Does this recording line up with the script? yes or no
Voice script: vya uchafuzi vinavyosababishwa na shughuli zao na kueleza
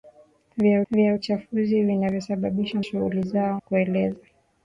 no